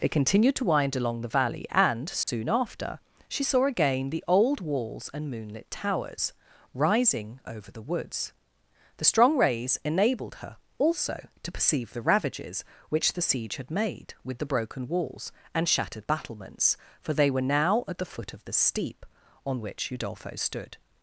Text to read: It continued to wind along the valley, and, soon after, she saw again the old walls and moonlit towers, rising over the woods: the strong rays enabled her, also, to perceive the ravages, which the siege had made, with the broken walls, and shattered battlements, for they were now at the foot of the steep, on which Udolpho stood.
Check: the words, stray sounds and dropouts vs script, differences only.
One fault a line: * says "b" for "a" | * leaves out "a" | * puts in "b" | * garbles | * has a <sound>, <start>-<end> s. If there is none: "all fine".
* has a dropout, 2.2-2.3 s